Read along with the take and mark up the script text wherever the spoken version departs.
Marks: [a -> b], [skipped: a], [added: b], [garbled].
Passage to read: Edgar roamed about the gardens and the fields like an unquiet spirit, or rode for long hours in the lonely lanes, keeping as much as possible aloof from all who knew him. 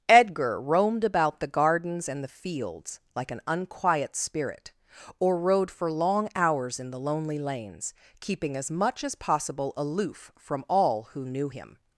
Edgar roamed about the gardens and the fields like an unquiet spirit, or rode for long hours in the lonely lanes, keeping as much as possible aloof from all who knew him.